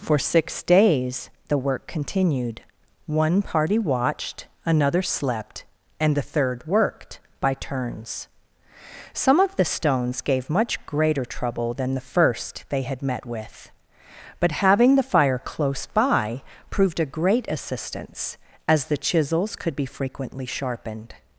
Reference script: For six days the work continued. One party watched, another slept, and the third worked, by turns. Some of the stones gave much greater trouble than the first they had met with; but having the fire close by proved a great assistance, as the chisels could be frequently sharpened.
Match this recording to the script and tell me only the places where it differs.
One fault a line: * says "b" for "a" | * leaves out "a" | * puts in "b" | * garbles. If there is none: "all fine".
all fine